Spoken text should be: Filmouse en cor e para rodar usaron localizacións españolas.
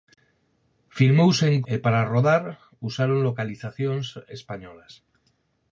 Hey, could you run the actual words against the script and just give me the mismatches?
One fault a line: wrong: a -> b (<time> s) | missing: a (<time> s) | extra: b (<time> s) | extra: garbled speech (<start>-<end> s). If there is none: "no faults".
missing: cor (1.6 s)